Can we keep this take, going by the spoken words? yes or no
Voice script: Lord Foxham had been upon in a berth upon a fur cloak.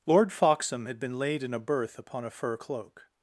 no